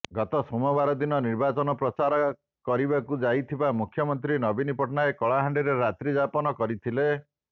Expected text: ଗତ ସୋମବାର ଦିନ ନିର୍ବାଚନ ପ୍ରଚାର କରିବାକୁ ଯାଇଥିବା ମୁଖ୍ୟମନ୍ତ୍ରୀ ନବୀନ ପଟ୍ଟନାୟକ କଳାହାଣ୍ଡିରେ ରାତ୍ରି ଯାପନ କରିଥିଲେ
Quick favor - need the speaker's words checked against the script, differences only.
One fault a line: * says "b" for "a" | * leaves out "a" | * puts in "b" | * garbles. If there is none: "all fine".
all fine